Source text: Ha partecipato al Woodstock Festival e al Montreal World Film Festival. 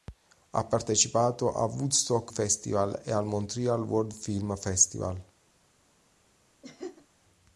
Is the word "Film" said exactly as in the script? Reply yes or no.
yes